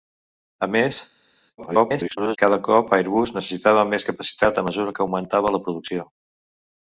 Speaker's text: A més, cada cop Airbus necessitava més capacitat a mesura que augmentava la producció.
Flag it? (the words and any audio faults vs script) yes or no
yes